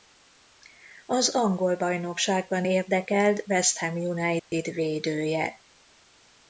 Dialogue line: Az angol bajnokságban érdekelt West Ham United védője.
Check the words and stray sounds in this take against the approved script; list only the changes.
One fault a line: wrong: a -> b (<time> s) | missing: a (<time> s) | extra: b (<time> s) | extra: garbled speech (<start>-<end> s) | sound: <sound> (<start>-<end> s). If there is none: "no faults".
sound: dropout (4.4-4.5 s)